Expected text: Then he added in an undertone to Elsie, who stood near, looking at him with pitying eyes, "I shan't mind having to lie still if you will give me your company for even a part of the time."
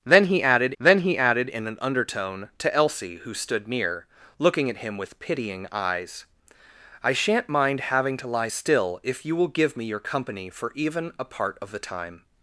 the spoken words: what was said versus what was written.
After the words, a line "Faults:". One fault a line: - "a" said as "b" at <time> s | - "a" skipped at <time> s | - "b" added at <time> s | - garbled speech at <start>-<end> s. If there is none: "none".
Then he added then he added in an undertone to Elsie, who stood near, looking at him with pitying eyes, "I shan't mind having to lie still if you will give me your company for even a part of the time."
Faults:
- "then he added" added at 0.8 s